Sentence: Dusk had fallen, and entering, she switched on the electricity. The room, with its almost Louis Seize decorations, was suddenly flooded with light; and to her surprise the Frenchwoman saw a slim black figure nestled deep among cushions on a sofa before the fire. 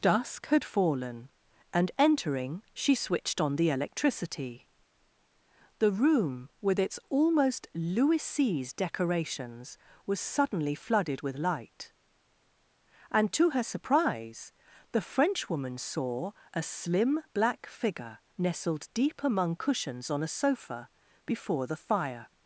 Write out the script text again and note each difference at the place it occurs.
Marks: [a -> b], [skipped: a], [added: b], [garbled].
Dusk had fallen, and entering, she switched on the electricity. The room, with its almost Louis Seize decorations, was suddenly flooded with light; and to her surprise the Frenchwoman saw a slim black figure nestled deep among cushions on a sofa before the fire.